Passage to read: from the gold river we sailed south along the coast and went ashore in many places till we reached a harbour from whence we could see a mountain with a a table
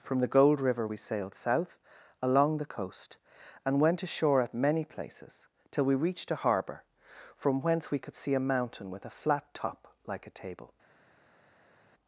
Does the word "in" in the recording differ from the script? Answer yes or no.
yes